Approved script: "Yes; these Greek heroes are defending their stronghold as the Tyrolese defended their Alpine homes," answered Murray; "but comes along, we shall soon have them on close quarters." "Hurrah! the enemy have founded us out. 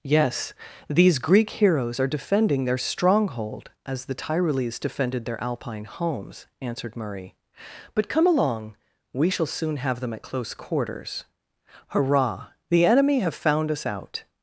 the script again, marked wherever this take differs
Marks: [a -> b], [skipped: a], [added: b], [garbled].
"Yes; these Greek heroes are defending their stronghold as the Tyrolese defended their Alpine homes," answered Murray; "but [comes -> come] along, we shall soon have them [on -> at] close quarters." "Hurrah! the enemy have [founded -> found] us out.